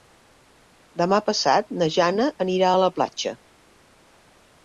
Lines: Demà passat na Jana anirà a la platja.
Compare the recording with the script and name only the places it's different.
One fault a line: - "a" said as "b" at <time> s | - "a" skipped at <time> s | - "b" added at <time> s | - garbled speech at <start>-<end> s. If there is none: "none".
none